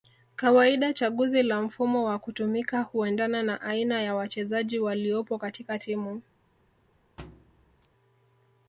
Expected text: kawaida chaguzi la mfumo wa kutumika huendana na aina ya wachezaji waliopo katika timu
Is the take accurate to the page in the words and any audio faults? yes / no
no